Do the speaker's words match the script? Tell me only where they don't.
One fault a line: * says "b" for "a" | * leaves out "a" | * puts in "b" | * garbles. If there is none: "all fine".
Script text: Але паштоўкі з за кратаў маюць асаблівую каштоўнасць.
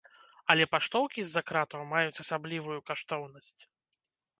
all fine